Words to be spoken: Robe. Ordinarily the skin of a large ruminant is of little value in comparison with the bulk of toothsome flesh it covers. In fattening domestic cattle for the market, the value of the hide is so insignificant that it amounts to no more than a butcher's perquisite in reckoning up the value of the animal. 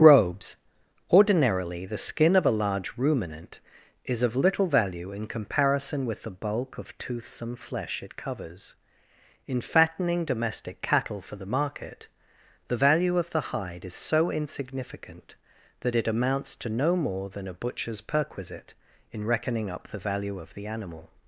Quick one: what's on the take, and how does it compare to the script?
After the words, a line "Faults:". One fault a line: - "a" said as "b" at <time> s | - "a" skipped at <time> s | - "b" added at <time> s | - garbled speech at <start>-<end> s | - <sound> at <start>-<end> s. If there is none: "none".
Robes. Ordinarily the skin of a large ruminant is of little value in comparison with the bulk of toothsome flesh it covers. In fattening domestic cattle for the market, the value of the hide is so insignificant that it amounts to no more than a butcher's perquisite in reckoning up the value of the animal.
Faults:
- "Robe" said as "Robes" at 0.0 s